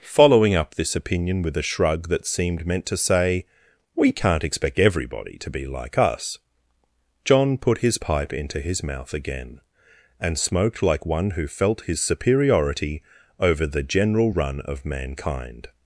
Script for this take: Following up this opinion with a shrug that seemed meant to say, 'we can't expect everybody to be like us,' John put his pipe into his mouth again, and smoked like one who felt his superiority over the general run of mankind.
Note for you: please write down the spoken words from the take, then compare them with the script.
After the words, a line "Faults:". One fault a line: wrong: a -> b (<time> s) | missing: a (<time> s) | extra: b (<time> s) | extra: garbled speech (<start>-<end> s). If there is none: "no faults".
Following up this opinion with a shrug that seemed meant to say, 'we can't expect everybody to be like us,' John put his pipe into his mouth again, and smoked like one who felt his superiority over the general run of mankind.
Faults:
no faults